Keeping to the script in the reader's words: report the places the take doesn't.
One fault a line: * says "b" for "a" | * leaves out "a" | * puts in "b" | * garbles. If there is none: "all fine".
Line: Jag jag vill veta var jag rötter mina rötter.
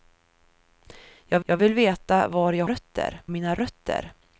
all fine